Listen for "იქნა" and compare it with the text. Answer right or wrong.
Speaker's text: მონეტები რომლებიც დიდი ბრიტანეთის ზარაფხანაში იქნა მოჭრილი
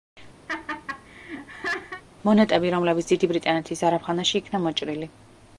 right